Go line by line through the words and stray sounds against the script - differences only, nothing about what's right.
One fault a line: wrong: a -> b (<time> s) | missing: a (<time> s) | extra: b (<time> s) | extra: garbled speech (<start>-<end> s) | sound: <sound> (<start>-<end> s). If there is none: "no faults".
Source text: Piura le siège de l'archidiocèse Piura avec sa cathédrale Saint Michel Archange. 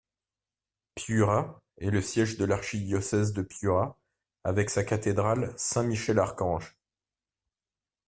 extra: est (1.8 s)
extra: de (3.3 s)